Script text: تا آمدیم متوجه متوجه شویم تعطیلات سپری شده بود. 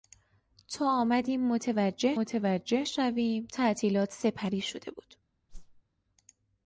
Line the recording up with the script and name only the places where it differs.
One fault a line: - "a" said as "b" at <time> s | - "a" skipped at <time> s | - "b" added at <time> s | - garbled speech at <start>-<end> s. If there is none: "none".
none